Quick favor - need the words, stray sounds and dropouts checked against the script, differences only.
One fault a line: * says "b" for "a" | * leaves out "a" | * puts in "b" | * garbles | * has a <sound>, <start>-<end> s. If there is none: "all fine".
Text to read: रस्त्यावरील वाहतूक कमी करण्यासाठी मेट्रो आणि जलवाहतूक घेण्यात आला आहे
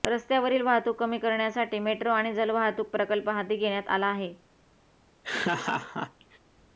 * puts in "प्रकल्प हाती"
* has a laugh, 5.2-6.4 s